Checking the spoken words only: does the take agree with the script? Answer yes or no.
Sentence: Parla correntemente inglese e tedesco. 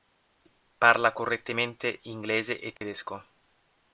yes